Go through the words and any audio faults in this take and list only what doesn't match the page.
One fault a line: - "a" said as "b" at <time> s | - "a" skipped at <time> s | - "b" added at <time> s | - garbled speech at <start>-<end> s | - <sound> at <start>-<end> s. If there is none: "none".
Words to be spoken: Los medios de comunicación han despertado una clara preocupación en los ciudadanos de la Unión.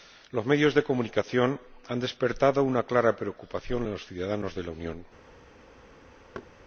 - thud at 6.3-6.5 s